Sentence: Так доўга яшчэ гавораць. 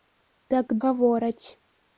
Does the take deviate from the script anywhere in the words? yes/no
yes